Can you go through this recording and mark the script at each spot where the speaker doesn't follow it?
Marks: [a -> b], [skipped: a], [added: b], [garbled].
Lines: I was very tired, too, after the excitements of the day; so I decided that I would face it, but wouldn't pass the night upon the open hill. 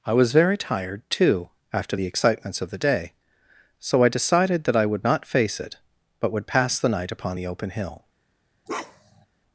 I was very tired, too, after the excitements of the day; so I decided that I would [added: not] face it, but [wouldn't -> would] pass the night upon the open hill.